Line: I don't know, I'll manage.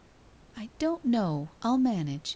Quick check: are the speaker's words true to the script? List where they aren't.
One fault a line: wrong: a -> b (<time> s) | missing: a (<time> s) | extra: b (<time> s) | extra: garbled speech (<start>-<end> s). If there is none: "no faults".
no faults